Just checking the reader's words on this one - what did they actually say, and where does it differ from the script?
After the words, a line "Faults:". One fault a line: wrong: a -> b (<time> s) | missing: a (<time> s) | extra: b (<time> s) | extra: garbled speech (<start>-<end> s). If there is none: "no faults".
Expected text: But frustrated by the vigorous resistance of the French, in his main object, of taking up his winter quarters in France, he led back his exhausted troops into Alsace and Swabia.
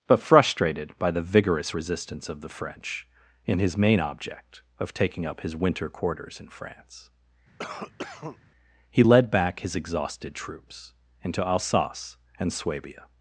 But frustrated by the vigorous resistance of the French, in his main object, of taking up his winter quarters in France, he led back his exhausted troops into Alsace and Swabia.
Faults:
no faults